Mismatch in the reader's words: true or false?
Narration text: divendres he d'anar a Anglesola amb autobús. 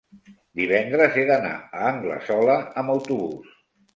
false